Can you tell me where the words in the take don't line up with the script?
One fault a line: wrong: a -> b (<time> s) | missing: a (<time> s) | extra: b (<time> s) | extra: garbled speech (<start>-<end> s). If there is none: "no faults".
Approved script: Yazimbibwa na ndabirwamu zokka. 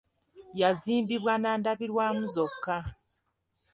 no faults